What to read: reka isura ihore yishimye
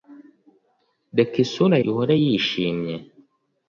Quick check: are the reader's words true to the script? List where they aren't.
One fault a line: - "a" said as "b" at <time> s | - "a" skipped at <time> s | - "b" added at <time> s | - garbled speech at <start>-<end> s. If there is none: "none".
none